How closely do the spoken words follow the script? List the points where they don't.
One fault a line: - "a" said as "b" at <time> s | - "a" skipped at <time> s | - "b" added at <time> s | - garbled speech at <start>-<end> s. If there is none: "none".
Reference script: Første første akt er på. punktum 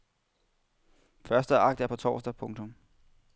- "første" skipped at 1.6 s
- "torsdag" added at 1.9 s